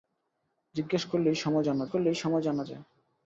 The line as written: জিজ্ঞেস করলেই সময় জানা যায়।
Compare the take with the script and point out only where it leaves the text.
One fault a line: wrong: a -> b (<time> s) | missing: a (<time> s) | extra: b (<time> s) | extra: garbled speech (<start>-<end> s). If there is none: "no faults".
extra: করলেই সময় জানা (1.9 s)